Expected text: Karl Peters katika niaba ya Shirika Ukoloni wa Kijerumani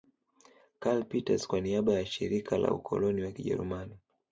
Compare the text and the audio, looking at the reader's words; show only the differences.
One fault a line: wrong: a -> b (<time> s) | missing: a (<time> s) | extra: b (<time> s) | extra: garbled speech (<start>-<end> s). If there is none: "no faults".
wrong: katika -> kwa (1.5 s)
extra: la (2.6 s)